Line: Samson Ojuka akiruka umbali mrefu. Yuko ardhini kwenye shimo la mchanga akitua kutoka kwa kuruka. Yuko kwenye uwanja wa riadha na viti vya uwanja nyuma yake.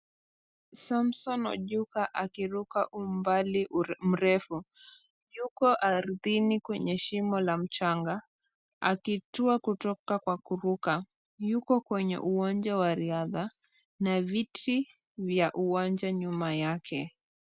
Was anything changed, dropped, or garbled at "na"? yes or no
no